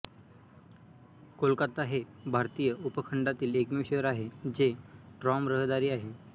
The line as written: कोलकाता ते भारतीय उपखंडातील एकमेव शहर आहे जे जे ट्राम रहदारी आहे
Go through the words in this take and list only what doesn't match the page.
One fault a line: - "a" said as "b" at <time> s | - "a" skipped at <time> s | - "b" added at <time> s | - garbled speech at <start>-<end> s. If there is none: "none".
- "ते" said as "हे" at 1.8 s
- "जे" skipped at 4.7 s